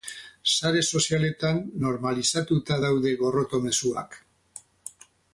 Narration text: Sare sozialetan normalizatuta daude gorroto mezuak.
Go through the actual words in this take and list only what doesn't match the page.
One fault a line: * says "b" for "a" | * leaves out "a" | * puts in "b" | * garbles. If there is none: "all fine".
all fine